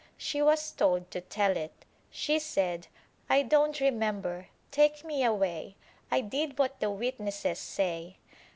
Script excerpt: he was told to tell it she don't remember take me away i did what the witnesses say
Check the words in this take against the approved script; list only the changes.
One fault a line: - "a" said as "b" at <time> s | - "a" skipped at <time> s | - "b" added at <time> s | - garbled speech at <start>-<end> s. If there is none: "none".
- "he" said as "she" at 0.2 s
- "said i" added at 2.4 s